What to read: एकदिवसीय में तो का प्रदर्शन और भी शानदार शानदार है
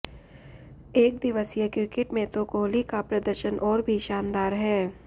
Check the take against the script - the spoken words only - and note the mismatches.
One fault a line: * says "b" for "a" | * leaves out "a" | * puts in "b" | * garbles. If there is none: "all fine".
* puts in "क्रिकेट"
* puts in "कोहली"
* leaves out "शानदार"